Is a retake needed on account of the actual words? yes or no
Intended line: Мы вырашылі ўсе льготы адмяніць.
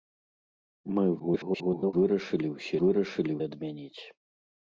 yes